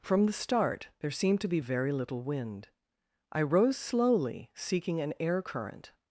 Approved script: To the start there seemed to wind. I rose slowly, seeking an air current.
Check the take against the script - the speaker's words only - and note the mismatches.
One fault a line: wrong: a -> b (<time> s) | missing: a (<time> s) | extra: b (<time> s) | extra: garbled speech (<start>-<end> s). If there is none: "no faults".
wrong: To -> From (0.0 s)
extra: be very little (1.5 s)